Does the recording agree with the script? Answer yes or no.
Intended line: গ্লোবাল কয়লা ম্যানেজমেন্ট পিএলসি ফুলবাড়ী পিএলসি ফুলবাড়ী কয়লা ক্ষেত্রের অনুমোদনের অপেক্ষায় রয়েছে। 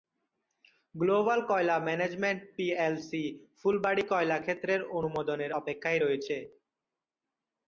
no